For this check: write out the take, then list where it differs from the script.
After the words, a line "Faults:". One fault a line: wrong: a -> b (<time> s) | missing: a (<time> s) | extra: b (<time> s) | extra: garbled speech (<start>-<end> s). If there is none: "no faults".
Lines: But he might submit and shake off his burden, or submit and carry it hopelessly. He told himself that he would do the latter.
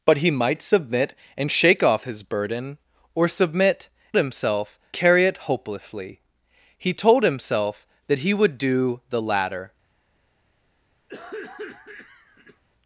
But he might submit and shake off his burden, or submit himself carry it hopelessly. He told himself that he would do the latter.
Faults:
wrong: and -> himself (4.2 s)